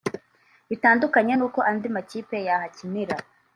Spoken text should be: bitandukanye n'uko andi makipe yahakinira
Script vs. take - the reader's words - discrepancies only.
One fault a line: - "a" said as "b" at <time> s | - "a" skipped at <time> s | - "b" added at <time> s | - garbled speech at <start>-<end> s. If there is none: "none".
none